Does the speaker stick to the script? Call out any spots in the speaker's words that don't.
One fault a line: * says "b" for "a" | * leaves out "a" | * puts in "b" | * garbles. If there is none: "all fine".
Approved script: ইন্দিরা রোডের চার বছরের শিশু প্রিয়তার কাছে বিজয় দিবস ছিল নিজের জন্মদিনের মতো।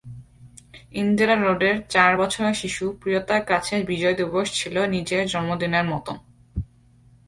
all fine